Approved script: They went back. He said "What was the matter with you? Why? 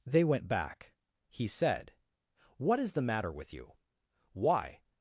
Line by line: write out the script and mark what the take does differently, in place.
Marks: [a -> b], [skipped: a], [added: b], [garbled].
They went back. He said "What [was -> is] the matter with you? Why?